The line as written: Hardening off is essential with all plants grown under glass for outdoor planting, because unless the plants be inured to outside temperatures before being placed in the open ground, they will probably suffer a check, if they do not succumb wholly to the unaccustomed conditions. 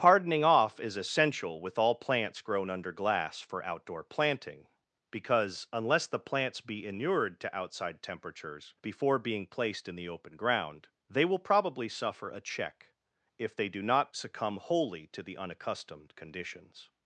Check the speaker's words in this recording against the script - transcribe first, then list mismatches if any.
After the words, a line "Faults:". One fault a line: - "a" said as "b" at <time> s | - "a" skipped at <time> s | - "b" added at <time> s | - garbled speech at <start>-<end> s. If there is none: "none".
Hardening off is essential with all plants grown under glass for outdoor planting, because unless the plants be inured to outside temperatures before being placed in the open ground, they will probably suffer a check, if they do not succumb wholly to the unaccustomed conditions.
Faults:
none